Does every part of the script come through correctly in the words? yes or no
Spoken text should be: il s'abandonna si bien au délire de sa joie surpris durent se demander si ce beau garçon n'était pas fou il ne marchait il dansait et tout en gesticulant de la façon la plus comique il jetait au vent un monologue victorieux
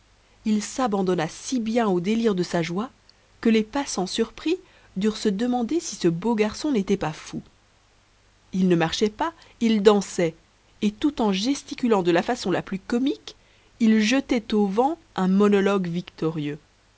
no